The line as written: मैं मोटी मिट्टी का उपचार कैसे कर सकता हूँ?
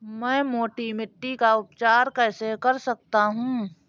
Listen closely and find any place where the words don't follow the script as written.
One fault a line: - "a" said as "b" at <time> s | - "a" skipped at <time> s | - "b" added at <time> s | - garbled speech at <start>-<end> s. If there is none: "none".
none